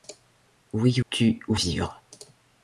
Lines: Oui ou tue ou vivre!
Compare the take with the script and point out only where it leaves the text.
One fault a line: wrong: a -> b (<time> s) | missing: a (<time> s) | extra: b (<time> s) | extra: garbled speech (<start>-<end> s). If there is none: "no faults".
no faults